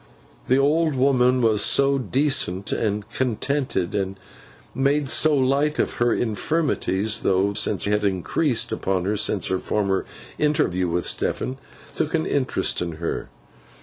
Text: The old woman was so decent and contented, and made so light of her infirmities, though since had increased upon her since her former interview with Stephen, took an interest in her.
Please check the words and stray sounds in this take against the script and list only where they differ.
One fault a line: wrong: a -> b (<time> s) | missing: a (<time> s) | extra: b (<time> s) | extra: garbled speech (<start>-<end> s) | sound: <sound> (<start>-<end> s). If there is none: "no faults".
no faults